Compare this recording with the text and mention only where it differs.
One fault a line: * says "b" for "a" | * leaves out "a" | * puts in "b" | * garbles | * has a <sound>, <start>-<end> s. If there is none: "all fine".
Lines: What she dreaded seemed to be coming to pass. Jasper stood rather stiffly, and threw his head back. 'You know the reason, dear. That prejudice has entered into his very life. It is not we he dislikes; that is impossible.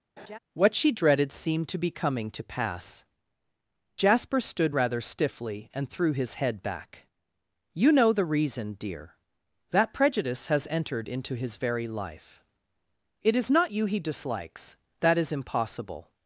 * has a laugh, 0.2-0.4 s
* says "you" for "we"